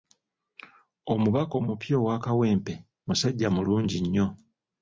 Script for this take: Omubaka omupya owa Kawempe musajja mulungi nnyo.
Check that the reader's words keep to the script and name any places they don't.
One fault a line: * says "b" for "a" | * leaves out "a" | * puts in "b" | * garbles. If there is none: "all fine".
all fine